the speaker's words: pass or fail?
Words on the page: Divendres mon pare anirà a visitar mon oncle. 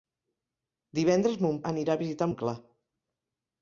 fail